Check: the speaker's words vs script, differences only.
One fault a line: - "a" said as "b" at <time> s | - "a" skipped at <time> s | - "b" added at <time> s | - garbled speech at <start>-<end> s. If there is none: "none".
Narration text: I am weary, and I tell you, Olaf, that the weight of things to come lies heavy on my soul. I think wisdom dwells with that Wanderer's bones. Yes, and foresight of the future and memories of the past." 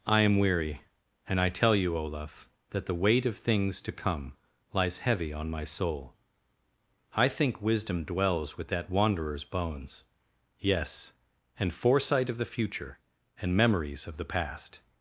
none